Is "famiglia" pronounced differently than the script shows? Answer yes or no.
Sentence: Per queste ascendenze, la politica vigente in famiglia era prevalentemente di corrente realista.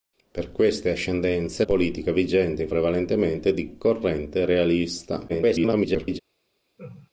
yes